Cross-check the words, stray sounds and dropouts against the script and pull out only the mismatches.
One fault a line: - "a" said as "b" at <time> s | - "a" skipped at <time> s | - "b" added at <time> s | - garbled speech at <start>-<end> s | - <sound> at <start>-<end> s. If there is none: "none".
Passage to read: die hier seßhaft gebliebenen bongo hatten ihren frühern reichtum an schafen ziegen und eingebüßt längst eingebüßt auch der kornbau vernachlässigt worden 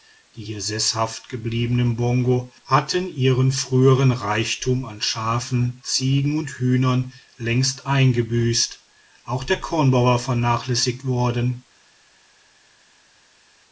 - "eingebüßt" said as "hühnern" at 6.6 s
- "war" added at 10.0 s